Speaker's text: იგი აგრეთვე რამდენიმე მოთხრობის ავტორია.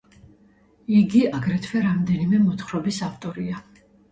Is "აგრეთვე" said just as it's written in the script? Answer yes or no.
yes